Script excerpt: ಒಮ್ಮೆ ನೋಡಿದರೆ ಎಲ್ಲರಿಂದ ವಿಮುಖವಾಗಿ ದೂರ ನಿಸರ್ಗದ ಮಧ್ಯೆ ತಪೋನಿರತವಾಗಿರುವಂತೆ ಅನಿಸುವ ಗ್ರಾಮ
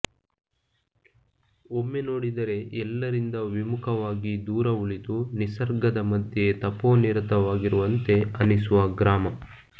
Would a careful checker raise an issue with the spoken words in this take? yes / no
yes